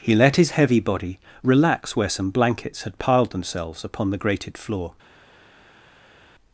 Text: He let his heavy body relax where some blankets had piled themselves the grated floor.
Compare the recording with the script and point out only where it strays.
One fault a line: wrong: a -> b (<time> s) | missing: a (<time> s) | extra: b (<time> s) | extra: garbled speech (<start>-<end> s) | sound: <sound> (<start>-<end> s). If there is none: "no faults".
extra: upon (3.8 s)